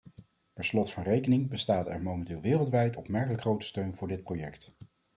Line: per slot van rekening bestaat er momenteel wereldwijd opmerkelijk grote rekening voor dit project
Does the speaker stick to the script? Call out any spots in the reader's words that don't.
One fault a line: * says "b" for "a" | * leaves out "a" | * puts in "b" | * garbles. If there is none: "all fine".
* says "steun" for "rekening"